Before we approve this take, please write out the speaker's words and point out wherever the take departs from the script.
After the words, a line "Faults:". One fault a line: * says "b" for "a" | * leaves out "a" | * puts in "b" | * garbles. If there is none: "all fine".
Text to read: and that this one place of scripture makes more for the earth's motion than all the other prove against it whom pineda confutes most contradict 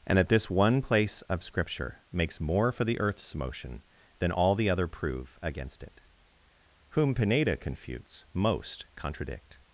and that this one place of scripture makes more for the earth's motion than all the other prove against it whom pineda confutes most contradict
Faults:
all fine